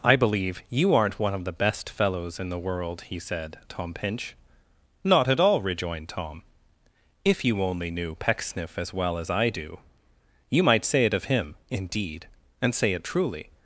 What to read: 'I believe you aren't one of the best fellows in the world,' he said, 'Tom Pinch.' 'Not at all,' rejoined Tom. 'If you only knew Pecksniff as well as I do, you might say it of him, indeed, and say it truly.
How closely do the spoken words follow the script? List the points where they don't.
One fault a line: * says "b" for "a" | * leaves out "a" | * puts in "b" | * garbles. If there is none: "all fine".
all fine